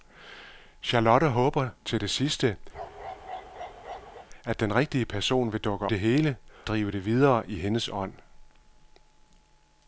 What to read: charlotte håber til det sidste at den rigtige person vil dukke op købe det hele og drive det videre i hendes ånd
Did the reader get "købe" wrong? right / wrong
wrong